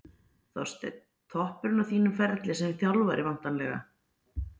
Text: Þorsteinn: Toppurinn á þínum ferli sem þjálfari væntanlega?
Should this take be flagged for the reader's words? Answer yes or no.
no